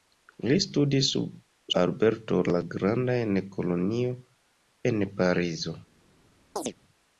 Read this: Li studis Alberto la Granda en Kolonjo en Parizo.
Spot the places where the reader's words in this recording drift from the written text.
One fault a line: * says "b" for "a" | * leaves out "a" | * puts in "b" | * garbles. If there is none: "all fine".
all fine